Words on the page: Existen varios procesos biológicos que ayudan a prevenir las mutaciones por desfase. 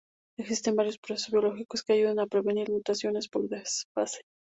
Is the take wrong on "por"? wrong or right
right